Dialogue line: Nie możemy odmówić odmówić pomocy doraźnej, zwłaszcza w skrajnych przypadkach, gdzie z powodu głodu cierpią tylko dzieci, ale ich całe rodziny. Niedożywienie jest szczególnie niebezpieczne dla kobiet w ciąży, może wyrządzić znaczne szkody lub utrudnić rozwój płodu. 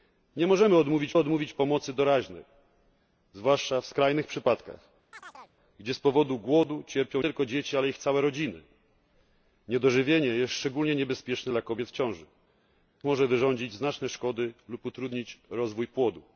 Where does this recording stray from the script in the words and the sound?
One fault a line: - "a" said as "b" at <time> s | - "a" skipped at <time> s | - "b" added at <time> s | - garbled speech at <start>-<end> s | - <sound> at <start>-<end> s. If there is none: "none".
- chirp at 5.1-5.5 s